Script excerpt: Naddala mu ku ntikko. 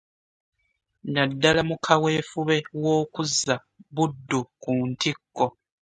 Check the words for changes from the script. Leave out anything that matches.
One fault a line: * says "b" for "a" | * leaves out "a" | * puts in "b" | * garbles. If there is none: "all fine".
* puts in "kaweefube w'okuzza Buddu"